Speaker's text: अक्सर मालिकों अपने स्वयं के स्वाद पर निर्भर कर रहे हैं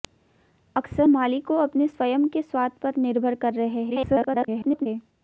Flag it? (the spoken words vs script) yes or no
yes